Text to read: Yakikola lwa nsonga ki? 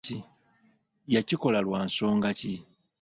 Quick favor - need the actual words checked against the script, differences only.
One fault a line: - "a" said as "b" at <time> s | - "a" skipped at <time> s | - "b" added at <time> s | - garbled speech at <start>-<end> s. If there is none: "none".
none